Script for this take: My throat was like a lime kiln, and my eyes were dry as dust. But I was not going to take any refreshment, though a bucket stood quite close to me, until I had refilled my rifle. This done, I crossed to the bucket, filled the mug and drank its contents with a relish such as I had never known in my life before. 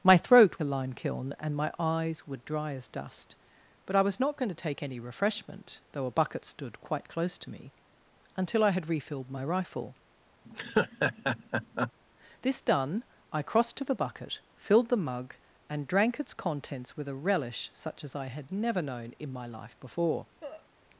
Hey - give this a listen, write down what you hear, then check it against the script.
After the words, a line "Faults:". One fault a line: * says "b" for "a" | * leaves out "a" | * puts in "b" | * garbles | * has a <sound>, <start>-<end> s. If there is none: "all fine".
My throat a lime kiln, and my eyes were dry as dust. But I was not going to take any refreshment, though a bucket stood quite close to me, until I had refilled my rifle. This done, I crossed to the bucket, filled the mug and drank its contents with a relish such as I had never known in my life before.
Faults:
* leaves out "was like"
* has a laugh, 10.4-11.9 s
* has a cough, 20.4-20.7 s